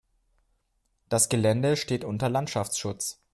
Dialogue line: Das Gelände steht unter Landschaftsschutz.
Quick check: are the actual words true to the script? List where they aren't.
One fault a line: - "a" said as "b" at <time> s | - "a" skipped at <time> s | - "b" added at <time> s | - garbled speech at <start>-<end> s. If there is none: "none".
none